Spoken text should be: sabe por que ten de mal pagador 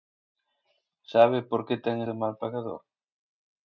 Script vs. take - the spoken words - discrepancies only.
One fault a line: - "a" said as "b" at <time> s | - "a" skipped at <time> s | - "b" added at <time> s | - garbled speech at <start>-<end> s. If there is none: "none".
none